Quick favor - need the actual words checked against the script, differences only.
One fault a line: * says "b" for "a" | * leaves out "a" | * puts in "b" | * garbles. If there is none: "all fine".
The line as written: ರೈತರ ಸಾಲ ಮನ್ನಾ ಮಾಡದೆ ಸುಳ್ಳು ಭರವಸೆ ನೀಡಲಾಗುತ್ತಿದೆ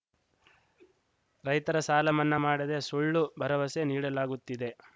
all fine